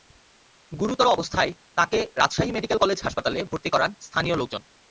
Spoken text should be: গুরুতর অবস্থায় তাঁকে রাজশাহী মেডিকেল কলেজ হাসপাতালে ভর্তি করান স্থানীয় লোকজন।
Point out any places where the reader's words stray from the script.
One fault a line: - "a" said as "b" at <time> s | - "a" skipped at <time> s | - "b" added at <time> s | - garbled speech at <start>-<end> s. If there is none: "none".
none